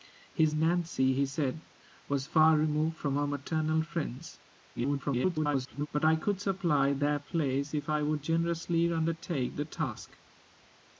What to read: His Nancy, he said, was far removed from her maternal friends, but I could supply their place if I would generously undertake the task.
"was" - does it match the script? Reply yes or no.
yes